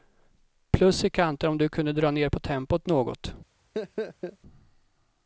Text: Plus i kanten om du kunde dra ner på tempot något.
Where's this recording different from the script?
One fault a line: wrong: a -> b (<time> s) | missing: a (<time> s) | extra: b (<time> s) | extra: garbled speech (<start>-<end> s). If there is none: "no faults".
no faults